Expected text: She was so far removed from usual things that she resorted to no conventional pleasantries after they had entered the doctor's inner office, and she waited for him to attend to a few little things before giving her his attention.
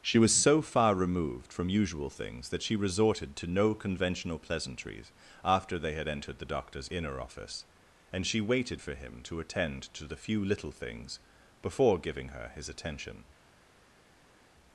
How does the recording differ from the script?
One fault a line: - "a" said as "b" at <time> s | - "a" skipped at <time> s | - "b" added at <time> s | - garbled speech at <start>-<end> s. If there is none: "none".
- "a" said as "the" at 10.1 s